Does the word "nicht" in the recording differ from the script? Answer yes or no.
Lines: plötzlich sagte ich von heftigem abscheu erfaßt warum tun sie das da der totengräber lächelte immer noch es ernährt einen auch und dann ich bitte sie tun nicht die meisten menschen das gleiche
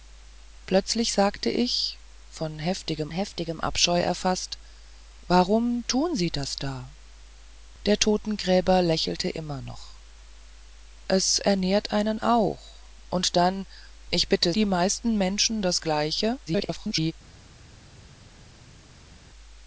yes